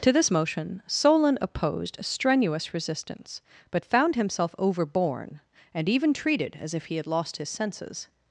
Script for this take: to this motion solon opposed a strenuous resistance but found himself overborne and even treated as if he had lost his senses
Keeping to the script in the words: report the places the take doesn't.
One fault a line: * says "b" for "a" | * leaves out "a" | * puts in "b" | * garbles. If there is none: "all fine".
all fine